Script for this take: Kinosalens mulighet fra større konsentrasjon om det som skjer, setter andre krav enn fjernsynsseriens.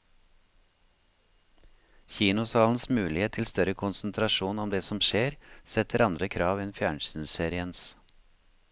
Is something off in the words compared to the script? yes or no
yes